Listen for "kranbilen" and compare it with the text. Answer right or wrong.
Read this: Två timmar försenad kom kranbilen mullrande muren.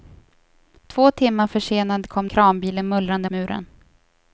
right